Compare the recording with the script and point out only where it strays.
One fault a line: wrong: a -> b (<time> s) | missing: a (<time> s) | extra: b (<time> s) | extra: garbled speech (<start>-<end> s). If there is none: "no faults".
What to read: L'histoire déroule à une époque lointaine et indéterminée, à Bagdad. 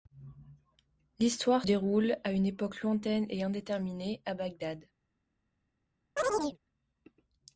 no faults